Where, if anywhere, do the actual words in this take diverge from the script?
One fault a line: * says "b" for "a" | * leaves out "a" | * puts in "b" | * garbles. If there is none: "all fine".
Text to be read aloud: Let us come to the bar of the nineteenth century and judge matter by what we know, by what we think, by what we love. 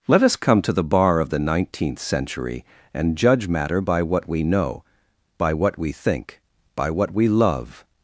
all fine